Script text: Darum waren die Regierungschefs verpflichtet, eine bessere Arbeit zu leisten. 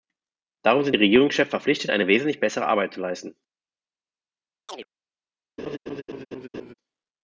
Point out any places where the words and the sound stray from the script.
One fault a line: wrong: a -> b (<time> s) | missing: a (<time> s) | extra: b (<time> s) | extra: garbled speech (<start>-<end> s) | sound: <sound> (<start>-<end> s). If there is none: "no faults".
wrong: waren -> sind (0.8 s)
extra: wesentlich (2.1 s)
sound: chirp (4.7-4.9 s)
sound: laugh (5.6-6.7 s)